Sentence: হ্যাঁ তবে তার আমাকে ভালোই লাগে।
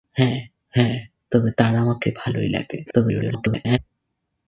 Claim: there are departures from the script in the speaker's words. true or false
true